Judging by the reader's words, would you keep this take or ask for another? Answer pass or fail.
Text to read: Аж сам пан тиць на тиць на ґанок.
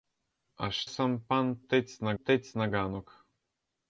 pass